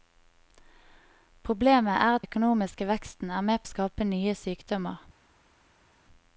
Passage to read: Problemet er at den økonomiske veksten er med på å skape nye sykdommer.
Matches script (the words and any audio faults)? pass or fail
fail